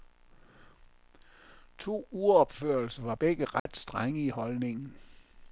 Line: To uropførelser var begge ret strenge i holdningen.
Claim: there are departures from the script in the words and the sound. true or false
true